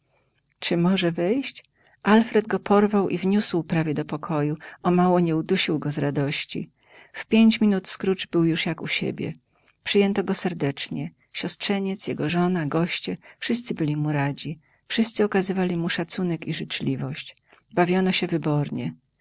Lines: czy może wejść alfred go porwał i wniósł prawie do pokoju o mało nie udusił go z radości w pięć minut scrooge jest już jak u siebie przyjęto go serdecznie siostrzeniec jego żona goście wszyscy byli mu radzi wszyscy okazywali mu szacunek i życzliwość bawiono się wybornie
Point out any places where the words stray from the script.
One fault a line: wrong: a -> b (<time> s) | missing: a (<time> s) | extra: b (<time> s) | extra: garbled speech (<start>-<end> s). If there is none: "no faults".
wrong: jest -> był (8.3 s)